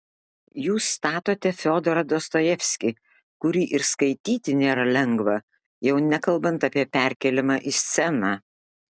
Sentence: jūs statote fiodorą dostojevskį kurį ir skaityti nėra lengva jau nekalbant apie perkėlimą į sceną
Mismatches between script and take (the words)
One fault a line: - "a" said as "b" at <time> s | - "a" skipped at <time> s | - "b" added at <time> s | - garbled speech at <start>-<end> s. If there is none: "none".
none